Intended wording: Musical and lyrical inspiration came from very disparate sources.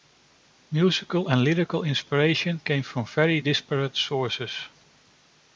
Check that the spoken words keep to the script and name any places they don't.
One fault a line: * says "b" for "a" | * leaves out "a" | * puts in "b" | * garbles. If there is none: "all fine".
all fine